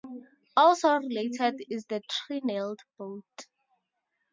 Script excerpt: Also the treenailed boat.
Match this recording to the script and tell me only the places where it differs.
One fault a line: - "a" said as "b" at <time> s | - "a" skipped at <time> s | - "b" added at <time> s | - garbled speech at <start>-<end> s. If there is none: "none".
- "related is" added at 0.9 s